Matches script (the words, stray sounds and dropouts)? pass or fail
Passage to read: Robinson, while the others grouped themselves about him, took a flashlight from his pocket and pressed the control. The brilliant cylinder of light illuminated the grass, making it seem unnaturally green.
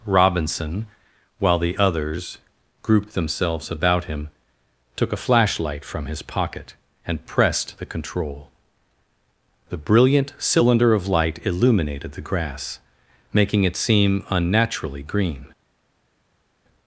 pass